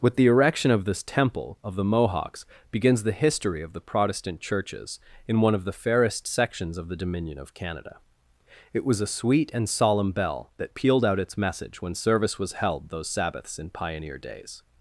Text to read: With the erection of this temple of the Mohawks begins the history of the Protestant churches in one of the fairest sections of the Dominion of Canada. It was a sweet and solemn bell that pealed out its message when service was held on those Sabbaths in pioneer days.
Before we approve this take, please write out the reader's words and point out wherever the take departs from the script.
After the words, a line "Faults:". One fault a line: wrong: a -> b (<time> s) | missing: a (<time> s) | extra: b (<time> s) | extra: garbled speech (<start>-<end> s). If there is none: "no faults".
With the erection of this temple of the Mohawks begins the history of the Protestant churches in one of the fairest sections of the Dominion of Canada. It was a sweet and solemn bell that pealed out its message when service was held those Sabbaths in pioneer days.
Faults:
missing: on (12.9 s)